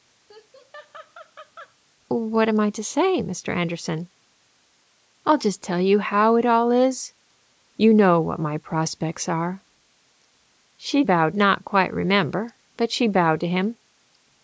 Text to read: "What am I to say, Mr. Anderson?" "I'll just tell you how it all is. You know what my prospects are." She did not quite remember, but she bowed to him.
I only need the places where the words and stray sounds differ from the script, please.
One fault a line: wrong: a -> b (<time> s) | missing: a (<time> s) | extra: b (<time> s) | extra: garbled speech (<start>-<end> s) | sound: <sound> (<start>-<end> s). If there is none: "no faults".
sound: laugh (0.3-1.8 s)
wrong: did -> bowed (11.0 s)